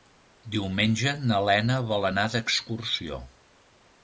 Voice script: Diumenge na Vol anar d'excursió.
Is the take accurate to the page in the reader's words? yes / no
no